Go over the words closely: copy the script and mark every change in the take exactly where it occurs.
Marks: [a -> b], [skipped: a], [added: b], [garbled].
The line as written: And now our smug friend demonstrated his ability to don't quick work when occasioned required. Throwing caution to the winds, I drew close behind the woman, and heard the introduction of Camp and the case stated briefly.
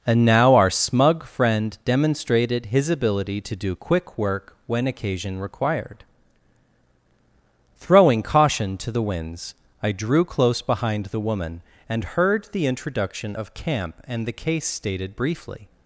And now our smug friend demonstrated his ability to [don't -> do] quick work when [occasioned -> occasion] required. Throwing caution to the winds, I drew close behind the woman, and heard the introduction of Camp and the case stated briefly.